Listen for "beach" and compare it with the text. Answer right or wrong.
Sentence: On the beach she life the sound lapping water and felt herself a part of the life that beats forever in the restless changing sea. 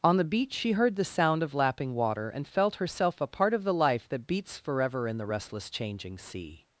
right